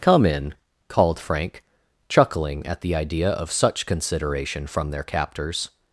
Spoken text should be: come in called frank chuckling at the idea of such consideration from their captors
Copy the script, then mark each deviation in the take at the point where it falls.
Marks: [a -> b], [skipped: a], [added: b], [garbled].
come in called frank chuckling at the idea of such consideration from their captors